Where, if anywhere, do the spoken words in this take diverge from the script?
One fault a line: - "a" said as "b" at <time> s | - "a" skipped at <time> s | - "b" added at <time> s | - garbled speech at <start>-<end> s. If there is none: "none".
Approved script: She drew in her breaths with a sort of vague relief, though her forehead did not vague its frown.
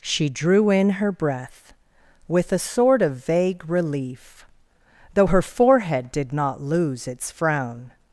- "breaths" said as "breath" at 1.1 s
- "vague" said as "lose" at 6.6 s